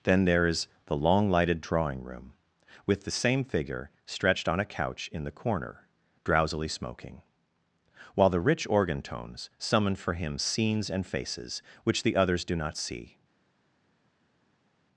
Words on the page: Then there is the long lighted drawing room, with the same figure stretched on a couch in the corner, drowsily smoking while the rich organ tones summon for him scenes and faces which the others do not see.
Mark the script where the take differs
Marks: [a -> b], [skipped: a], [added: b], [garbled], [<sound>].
Then there is the long lighted drawing room, with the same figure stretched on a couch in the corner, drowsily smoking while the rich organ tones summon for him scenes and faces which the others do not see.